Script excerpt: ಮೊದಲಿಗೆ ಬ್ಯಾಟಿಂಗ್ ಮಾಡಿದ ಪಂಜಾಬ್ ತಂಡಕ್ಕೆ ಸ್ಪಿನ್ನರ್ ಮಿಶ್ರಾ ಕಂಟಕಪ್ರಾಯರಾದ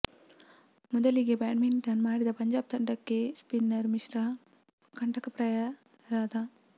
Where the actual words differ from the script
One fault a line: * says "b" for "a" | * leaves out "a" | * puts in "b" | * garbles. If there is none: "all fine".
all fine